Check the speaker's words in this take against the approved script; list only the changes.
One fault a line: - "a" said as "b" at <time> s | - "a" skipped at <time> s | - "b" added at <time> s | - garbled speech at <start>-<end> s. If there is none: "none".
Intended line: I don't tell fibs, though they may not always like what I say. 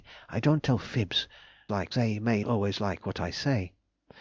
- "though" said as "like" at 1.7 s
- "not" skipped at 2.4 s